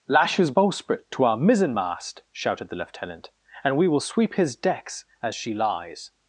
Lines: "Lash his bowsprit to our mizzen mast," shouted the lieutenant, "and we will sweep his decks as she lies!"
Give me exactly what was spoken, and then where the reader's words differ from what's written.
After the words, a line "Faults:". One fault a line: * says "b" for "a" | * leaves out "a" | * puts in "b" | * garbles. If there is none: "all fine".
"Lash his bowsprit to our mizzen mast," shouted the lieutenant, "and we will sweep his decks as she lies!"
Faults:
all fine